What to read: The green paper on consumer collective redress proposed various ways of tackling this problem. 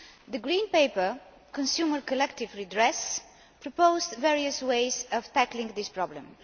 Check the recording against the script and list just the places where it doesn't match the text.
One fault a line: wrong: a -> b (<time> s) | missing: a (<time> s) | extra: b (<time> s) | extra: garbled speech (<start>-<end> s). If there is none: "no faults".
missing: on (1.2 s)